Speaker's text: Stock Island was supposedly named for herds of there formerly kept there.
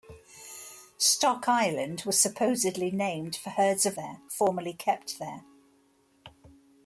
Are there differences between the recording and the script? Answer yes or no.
no